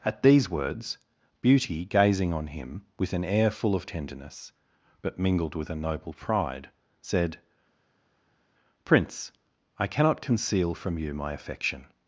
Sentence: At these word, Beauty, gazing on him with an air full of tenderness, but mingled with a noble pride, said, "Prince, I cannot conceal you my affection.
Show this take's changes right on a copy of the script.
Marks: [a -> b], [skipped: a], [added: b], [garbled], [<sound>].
At these [word, -> words] Beauty, gazing on him with an air full of tenderness, but mingled with a noble pride, said, "Prince, I cannot conceal [added: from] you my affection.